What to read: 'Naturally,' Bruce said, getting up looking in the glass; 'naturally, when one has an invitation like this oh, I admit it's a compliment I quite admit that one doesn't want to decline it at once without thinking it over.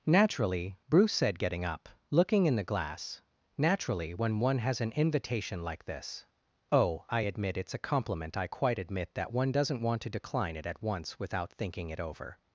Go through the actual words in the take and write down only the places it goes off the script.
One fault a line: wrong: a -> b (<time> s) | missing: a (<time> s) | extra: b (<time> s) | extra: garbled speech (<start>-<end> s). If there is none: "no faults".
no faults